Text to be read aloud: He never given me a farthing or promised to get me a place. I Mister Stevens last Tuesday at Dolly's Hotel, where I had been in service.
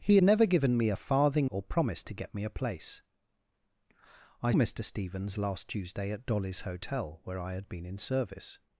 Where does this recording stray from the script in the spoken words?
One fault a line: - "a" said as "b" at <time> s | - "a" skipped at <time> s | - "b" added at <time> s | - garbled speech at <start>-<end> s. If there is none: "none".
none